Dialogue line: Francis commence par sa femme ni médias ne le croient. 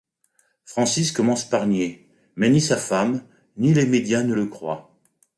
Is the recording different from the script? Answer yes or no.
yes